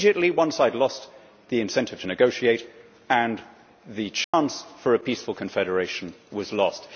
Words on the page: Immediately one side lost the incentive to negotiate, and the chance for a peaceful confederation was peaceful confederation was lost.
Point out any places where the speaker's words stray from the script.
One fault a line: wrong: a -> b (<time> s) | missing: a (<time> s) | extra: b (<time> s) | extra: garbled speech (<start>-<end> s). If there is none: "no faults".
missing: peaceful confederation was (6.5 s)